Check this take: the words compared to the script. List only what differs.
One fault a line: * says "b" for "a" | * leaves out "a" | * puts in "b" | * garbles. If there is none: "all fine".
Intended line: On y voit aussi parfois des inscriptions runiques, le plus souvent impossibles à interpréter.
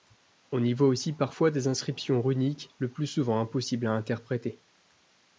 all fine